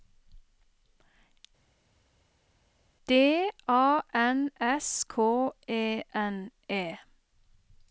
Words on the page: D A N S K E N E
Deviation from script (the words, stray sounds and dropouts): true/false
false